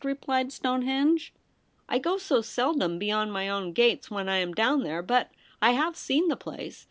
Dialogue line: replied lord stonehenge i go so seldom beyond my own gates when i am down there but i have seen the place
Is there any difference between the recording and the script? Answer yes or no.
yes